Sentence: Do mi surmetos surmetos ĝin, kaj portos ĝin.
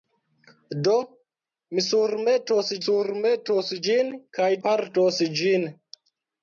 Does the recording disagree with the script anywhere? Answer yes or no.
no